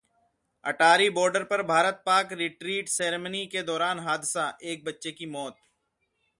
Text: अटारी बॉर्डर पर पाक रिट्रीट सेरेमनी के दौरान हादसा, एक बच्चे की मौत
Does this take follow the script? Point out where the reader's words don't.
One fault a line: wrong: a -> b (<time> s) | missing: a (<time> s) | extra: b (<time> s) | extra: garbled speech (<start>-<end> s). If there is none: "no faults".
extra: भारत (1.6 s)